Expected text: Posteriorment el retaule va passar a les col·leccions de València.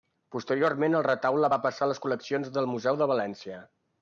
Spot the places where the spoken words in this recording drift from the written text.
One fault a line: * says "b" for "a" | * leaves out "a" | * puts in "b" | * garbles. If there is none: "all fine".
* puts in "del museu"